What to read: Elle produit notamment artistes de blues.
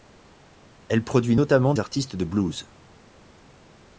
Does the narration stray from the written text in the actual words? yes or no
no